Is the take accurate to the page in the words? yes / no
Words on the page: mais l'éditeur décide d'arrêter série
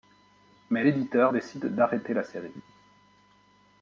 no